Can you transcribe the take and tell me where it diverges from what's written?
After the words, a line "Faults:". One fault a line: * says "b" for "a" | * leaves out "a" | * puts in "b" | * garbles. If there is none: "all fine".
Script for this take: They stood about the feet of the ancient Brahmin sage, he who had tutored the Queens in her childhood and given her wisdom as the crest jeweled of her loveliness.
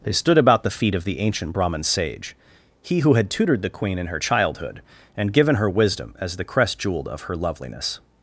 They stood about the feet of the ancient Brahmin sage, he who had tutored the Queen in her childhood and given her wisdom as the crest jeweled of her loveliness.
Faults:
* says "Queen" for "Queens"